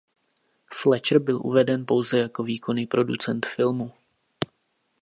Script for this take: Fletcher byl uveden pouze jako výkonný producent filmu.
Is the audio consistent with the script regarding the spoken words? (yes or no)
yes